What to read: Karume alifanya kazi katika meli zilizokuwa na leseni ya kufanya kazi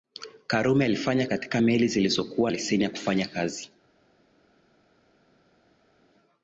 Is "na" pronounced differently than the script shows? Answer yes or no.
yes